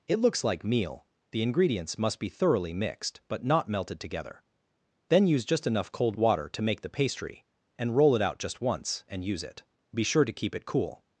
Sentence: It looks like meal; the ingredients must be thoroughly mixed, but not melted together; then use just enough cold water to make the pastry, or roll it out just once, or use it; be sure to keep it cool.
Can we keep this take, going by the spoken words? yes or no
no